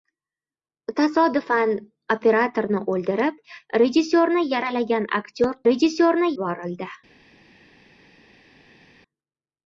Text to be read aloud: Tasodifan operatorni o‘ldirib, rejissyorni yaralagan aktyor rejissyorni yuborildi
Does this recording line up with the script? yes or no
yes